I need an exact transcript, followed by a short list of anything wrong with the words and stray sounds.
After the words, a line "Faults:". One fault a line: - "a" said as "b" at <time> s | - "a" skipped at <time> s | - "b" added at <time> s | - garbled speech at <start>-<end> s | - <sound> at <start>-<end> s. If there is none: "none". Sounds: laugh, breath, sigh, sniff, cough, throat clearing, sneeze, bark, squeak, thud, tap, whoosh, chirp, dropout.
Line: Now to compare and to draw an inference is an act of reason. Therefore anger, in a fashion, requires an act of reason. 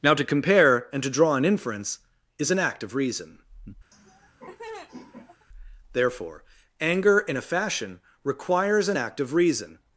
Now to compare and to draw an inference is an act of reason. Therefore anger, in a fashion, requires an act of reason.
Faults:
- laugh at 3.9-5.5 s